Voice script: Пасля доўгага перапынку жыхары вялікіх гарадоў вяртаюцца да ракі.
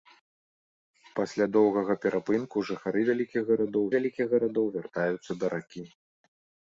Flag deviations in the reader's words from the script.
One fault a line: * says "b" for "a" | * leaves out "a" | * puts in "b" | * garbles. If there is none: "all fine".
* puts in "вялікіх гарадоў"